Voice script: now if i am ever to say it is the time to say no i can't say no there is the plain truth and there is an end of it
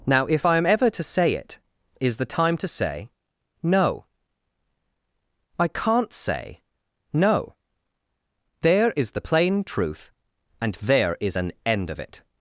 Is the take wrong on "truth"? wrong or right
right